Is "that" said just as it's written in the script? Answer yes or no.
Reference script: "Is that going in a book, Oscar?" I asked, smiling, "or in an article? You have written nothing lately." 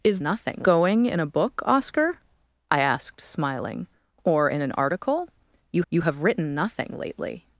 no